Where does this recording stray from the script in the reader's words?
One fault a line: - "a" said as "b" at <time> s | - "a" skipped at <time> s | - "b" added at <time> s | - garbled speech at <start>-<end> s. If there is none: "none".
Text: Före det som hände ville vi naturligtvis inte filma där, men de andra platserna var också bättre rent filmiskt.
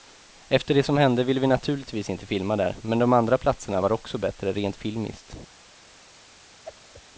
- "Före" said as "Efter" at 0.5 s